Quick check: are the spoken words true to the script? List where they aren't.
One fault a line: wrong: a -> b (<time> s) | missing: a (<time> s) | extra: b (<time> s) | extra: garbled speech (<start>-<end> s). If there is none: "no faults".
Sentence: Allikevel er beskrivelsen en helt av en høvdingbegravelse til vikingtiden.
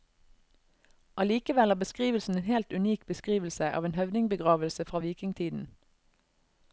extra: unik beskrivelse (2.7 s)
wrong: til -> fra (4.8 s)